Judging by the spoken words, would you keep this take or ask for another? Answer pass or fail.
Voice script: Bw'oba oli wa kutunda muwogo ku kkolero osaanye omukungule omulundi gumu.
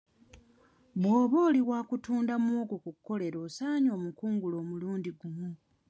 pass